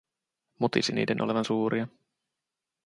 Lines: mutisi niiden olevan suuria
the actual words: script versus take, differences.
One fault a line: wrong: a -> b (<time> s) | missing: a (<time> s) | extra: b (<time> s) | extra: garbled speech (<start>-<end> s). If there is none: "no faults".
no faults